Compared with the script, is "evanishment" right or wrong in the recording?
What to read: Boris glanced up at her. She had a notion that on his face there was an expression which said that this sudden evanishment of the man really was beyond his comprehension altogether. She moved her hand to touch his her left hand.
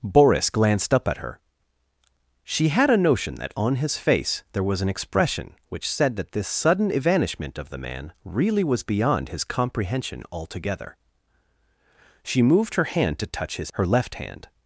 right